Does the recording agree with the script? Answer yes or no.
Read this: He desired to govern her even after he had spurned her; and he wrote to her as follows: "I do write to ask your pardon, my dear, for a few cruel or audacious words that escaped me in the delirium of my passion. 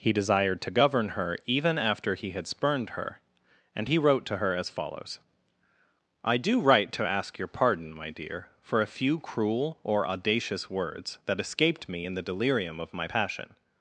yes